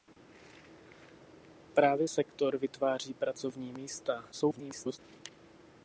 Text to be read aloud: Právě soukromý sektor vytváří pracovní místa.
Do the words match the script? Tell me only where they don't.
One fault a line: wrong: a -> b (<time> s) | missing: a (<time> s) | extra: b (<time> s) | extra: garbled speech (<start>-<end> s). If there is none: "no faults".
missing: soukromý (2.1 s)
extra: garbled speech (4.3-5.0 s)